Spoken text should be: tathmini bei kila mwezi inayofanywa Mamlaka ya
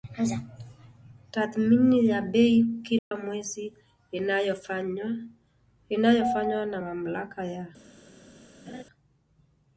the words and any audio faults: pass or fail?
fail